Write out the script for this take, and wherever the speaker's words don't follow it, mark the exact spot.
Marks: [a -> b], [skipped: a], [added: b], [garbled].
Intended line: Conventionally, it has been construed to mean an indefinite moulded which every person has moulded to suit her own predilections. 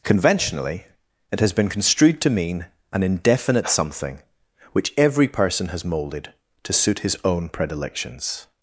Conventionally, it has been construed to mean an indefinite [moulded -> something] which every person has moulded to suit [her -> his] own predilections.